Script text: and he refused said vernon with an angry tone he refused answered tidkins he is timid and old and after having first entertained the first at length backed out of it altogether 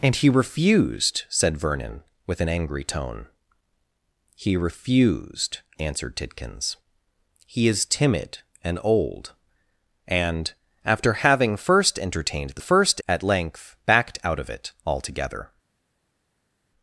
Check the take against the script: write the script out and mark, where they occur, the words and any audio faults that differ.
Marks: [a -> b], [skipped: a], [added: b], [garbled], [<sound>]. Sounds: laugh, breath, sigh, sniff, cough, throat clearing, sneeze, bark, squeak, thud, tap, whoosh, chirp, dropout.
and he refused said vernon with an angry tone he refused answered tidkins he is timid and old and after having first entertained the first at length backed out of it altogether